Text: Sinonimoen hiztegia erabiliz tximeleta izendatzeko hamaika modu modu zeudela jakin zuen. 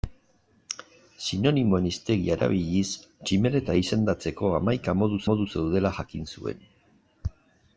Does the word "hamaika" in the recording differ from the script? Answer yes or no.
no